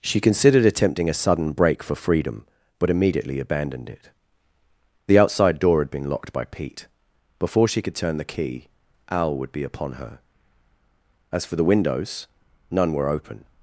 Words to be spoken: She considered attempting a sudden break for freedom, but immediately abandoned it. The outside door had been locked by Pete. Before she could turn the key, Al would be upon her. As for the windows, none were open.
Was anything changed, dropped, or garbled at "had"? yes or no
no